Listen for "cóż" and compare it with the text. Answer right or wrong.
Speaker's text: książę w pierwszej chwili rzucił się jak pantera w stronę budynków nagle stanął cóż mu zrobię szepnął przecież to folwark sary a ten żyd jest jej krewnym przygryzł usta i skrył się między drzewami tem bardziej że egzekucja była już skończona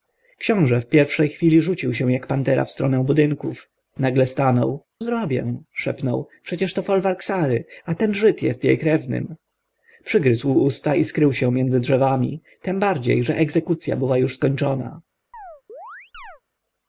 wrong